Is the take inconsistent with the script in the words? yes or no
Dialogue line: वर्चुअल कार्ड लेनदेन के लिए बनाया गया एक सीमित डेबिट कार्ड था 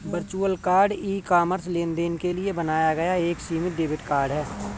yes